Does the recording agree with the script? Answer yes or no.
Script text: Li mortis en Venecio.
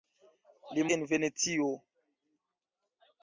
no